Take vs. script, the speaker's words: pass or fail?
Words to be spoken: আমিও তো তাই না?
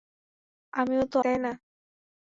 pass